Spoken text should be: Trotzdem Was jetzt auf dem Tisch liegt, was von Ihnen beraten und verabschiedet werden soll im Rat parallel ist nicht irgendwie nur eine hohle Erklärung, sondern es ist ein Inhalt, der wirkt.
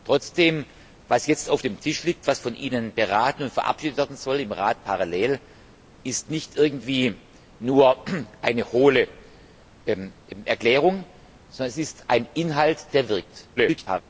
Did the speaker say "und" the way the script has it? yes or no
yes